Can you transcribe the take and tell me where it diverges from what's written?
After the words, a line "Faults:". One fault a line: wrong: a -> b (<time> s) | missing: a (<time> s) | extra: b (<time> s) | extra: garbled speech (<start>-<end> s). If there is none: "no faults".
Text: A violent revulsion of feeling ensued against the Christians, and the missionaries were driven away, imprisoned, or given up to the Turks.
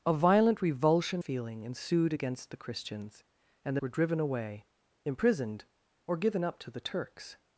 A violent revulsion feeling ensued against the Christians, and the were driven away, imprisoned, or given up to the Turks.
Faults:
missing: of (1.2 s)
missing: missionaries (3.8 s)